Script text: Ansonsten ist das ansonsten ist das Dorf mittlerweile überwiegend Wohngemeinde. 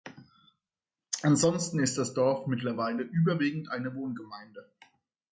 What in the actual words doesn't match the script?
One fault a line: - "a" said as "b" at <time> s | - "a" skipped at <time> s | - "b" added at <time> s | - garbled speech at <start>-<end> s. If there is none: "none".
- "ansonsten ist das" skipped at 2.1 s
- "eine" added at 3.7 s